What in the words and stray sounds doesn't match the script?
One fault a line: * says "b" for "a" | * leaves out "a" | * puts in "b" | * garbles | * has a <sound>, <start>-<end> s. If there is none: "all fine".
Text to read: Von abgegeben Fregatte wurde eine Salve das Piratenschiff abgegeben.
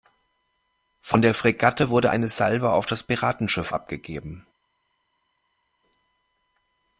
* says "der" for "abgegeben"
* puts in "auf"